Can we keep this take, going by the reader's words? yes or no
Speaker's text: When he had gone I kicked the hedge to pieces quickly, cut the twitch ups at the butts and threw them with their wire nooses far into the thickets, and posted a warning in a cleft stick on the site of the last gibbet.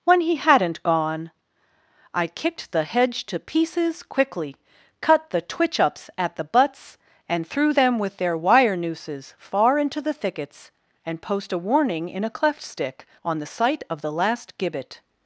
no